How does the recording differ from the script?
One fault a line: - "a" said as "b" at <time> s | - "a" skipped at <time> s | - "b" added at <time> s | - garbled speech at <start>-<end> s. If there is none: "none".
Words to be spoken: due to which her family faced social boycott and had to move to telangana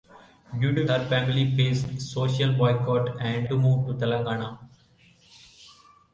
- "which" skipped at 0.8 s
- "had" skipped at 3.5 s